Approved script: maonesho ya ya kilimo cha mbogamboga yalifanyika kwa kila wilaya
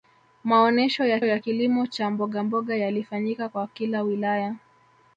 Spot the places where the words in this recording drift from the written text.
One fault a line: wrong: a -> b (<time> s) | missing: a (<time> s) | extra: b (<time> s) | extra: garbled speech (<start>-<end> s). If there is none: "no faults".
no faults